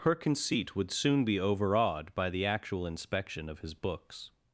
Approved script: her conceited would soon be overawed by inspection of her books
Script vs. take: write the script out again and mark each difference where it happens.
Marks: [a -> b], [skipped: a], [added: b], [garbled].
her [conceited -> conceit] would soon be overawed by [added: the actual] inspection of [her -> his] books